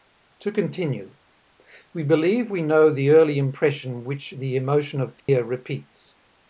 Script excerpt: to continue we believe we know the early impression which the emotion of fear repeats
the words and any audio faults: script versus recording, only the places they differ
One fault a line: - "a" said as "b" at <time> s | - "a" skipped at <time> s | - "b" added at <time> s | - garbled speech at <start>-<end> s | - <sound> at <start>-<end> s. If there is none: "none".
- dropout at 5.2-5.3 s